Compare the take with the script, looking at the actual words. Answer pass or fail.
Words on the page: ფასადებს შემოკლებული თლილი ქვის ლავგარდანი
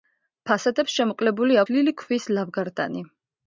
pass